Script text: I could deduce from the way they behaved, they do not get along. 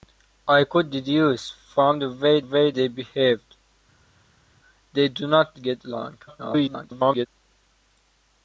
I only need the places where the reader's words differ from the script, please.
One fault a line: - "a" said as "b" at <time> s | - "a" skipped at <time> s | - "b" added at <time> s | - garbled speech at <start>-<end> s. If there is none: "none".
- "way" added at 2.4 s
- garbled speech at 6.3-7.3 s